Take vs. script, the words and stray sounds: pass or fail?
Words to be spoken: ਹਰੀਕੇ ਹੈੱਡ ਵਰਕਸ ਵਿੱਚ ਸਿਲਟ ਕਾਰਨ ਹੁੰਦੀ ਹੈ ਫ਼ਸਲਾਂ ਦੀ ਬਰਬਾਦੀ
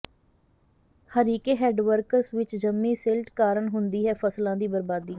fail